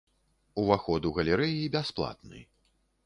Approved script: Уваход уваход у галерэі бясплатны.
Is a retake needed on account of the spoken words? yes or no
yes